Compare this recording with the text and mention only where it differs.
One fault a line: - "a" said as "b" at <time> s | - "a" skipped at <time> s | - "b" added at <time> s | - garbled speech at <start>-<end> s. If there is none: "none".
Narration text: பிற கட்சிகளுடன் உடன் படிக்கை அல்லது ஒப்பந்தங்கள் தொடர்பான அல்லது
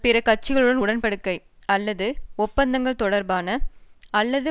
none